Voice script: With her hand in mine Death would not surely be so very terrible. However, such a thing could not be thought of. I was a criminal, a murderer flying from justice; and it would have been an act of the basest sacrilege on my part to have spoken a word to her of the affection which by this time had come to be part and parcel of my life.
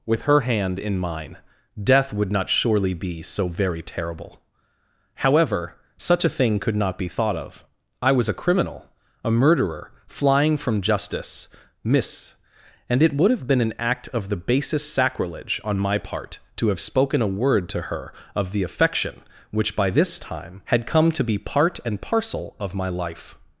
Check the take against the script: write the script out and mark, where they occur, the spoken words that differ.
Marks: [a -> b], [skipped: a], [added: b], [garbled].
With her hand in mine Death would not surely be so very terrible. However, such a thing could not be thought of. I was a criminal, a murderer flying from justice; [added: miss] and it would have been an act of the basest sacrilege on my part to have spoken a word to her of the affection which by this time had come to be part and parcel of my life.